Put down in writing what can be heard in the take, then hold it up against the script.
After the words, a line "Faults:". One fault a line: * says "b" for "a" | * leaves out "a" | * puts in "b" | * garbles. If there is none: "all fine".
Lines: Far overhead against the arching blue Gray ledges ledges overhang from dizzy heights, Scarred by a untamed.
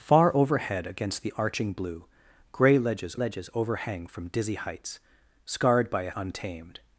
Far overhead against the arching blue Gray ledges ledges overhang from dizzy heights, Scarred by a untamed.
Faults:
all fine